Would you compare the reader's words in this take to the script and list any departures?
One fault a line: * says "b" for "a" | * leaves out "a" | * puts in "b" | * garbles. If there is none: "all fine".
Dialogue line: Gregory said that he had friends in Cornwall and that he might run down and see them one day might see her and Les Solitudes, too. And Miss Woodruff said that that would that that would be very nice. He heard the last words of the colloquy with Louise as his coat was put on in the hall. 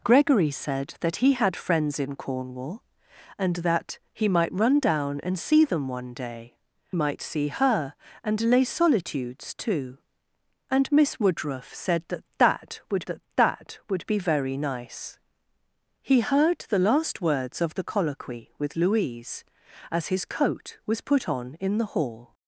all fine